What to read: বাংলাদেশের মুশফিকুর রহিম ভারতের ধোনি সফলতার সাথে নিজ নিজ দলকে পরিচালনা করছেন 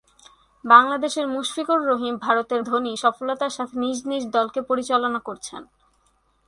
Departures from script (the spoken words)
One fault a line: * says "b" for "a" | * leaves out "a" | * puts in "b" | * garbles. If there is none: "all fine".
all fine